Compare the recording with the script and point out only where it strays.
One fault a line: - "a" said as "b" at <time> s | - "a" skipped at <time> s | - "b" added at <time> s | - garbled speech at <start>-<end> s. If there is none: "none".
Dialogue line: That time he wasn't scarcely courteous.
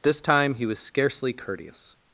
- "That" said as "This" at 0.0 s
- "wasn't" said as "was" at 0.7 s